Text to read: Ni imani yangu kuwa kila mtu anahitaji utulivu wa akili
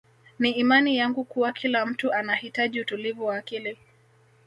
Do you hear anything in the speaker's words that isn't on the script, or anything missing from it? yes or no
no